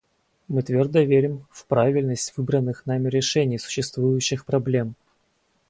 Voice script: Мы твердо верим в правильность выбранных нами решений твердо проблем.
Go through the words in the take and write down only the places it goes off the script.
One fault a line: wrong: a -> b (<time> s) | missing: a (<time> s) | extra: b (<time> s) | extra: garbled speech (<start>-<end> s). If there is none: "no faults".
wrong: твердо -> существующих (3.6 s)